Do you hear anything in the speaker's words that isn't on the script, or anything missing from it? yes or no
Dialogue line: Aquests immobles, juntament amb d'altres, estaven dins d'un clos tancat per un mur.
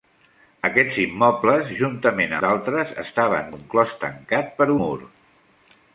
yes